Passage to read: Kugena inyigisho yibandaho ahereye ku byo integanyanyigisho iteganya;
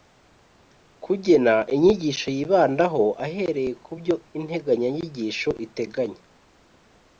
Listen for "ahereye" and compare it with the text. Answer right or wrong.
right